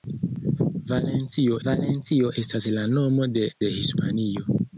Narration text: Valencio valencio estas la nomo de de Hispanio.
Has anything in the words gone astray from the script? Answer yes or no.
no